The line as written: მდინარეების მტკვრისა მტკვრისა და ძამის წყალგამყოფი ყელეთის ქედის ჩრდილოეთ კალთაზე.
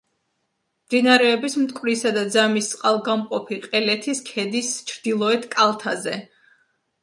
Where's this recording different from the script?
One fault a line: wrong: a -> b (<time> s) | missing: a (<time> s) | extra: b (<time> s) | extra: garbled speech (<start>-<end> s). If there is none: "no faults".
missing: მტკვრისა (2.1 s)